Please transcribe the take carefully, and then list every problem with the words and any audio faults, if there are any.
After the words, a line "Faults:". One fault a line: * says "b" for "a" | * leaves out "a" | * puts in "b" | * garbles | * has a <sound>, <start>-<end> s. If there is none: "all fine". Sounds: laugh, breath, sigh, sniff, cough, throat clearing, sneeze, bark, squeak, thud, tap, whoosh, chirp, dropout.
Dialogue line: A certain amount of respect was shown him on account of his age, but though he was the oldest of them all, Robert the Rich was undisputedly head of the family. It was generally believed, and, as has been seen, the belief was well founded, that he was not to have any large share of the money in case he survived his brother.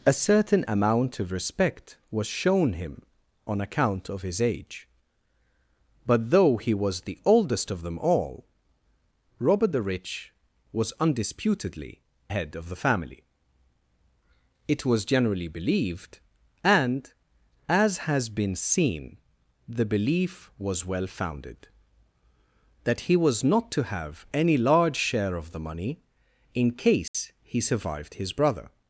A certain amount of respect was shown him on account of his age, but though he was the oldest of them all, Robert the Rich was undisputedly head of the family. It was generally believed, and, as has been seen, the belief was well founded, that he was not to have any large share of the money in case he survived his brother.
Faults:
* has a dropout, 27.1-27.1 s